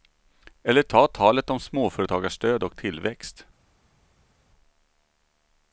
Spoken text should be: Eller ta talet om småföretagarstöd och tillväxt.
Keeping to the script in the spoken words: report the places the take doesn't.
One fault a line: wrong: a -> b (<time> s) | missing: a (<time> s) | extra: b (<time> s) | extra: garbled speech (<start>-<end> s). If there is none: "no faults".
no faults